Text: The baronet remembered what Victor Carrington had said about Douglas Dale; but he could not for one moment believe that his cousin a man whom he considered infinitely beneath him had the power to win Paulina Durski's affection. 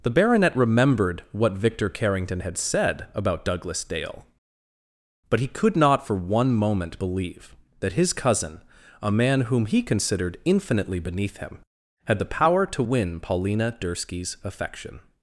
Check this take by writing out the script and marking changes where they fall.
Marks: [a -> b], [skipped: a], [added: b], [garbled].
The baronet remembered what Victor Carrington had said about Douglas Dale; but he could not for one moment believe that his cousin a man whom he considered infinitely beneath him had the power to win Paulina Durski's affection.